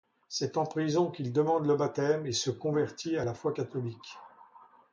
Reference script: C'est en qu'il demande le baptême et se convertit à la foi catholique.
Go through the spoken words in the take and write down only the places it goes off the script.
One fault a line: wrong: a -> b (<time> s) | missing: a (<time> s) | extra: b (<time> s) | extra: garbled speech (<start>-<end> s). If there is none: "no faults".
extra: prison (0.7 s)